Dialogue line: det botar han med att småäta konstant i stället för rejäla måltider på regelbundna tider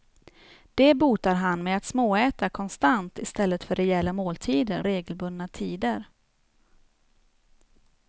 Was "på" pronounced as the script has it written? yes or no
no